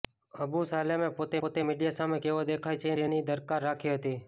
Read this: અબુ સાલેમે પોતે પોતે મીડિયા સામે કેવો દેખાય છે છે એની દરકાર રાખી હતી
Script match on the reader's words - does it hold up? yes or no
yes